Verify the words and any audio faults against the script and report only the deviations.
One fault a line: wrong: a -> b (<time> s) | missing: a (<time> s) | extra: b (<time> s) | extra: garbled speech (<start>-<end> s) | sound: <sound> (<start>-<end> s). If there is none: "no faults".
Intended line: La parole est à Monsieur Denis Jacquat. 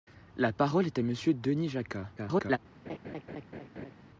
extra: garbled speech (2.2-2.6 s)
sound: laugh (2.9-3.9 s)